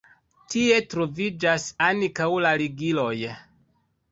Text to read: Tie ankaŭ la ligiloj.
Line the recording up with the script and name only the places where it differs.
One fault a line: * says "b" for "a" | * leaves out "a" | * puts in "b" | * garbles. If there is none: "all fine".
* puts in "troviĝas"